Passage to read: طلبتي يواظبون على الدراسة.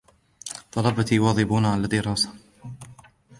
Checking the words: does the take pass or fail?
pass